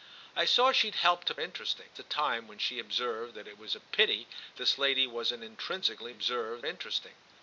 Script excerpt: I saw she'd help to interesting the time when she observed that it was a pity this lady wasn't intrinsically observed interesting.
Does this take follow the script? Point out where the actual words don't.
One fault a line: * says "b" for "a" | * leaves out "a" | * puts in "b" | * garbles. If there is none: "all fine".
all fine